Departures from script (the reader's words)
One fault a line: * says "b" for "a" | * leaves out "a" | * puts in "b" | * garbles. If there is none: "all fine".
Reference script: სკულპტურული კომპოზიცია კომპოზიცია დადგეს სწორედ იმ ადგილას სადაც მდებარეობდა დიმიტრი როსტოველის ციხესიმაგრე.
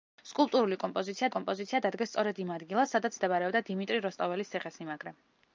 all fine